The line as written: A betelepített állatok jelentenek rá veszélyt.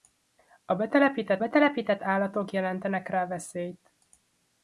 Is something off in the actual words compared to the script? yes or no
yes